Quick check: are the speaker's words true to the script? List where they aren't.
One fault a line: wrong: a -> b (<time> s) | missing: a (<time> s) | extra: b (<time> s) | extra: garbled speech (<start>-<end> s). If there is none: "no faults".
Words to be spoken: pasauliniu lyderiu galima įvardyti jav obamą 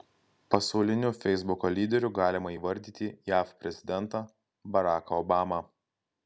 extra: feisbuko (1.2 s)
extra: prezidentą baraką (3.7 s)